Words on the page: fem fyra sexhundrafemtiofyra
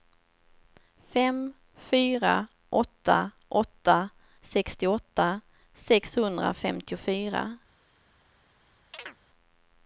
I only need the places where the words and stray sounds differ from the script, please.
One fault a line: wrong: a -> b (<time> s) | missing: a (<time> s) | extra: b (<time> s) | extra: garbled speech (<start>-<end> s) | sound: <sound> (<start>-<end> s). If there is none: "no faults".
extra: åtta åtta sextioåtta (2.7 s)
sound: chirp (8.9-9.2 s)